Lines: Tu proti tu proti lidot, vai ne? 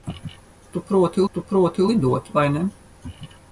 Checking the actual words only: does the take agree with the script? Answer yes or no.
yes